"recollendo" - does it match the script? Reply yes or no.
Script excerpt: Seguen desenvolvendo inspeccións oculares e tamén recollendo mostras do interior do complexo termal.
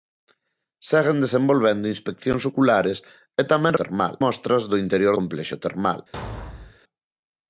no